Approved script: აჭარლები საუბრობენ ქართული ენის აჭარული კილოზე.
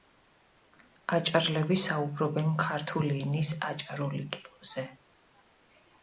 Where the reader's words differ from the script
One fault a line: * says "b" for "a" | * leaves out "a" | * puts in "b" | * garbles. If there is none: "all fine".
all fine